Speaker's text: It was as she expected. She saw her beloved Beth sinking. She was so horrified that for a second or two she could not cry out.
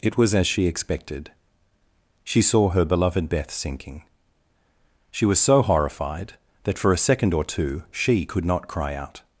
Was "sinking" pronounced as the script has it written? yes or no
yes